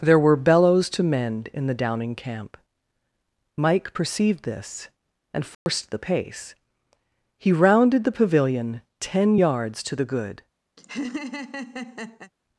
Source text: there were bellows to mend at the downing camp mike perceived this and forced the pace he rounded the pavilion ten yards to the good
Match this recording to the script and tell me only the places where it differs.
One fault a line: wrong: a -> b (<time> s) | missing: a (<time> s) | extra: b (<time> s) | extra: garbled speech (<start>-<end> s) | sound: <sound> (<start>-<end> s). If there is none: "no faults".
wrong: at -> in (1.5 s)
sound: dropout (5.5-5.7 s)
sound: laugh (10.8-12.3 s)